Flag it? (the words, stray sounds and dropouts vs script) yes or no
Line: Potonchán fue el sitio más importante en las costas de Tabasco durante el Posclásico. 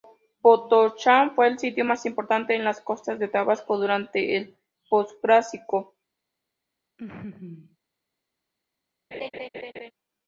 yes